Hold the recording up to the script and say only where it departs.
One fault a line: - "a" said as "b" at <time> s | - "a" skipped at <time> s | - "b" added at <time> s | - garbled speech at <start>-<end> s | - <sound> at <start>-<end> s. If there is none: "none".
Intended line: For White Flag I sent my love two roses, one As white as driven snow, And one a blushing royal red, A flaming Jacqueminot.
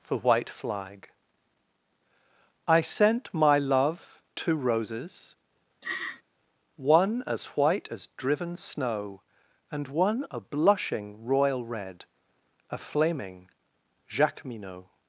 - laugh at 5.8-6.2 s